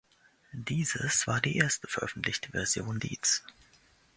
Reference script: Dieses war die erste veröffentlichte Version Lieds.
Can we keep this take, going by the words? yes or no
yes